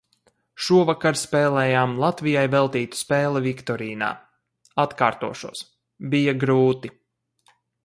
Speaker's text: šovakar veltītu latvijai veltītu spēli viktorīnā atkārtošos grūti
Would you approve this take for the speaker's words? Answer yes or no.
no